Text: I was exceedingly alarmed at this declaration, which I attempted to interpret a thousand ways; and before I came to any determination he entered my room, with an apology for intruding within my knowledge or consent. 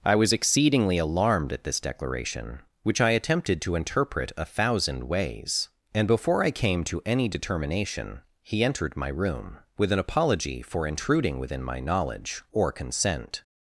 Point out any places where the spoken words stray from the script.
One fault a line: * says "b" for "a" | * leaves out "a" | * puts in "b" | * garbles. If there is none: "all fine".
all fine